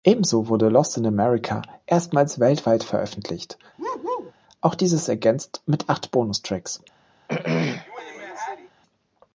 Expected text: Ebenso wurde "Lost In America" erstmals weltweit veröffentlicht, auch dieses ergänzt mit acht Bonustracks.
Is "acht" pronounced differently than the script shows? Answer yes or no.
no